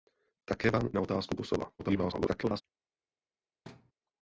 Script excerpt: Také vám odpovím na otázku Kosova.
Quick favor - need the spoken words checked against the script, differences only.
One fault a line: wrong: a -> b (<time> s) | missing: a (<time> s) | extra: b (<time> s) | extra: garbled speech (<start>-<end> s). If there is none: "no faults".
missing: odpovím (0.9 s)
extra: garbled speech (1.8-2.6 s)